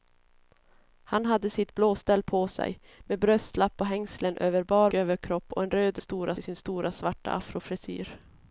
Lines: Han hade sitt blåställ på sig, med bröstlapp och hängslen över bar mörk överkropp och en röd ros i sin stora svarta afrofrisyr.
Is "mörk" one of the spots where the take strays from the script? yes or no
yes